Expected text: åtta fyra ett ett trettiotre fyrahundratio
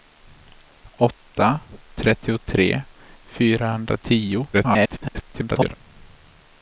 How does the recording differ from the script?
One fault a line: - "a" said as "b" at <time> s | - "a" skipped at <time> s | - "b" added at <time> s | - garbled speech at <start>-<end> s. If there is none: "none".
- "fyra ett ett" skipped at 1.6 s
- garbled speech at 4.5-5.7 s